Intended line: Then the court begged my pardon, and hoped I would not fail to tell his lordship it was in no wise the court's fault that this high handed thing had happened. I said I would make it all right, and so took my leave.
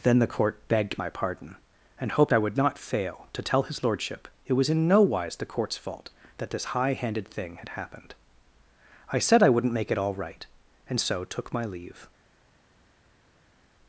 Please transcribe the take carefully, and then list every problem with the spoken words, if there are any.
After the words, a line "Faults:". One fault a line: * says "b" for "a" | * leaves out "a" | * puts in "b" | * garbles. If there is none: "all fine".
Then the court begged my pardon, and hoped I would not fail to tell his lordship it was in no wise the court's fault that this high handed thing had happened. I said I wouldn't make it all right, and so took my leave.
Faults:
* says "wouldn't" for "would"